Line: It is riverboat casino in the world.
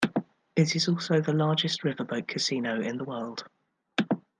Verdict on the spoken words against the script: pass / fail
fail